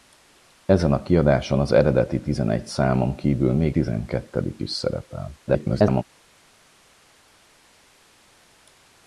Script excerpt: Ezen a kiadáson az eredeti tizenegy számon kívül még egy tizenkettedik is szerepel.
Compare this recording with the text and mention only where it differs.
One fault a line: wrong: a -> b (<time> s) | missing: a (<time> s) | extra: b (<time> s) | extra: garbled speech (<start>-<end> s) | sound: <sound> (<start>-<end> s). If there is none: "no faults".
missing: egy (3.8 s)
extra: garbled speech (5.5-6.0 s)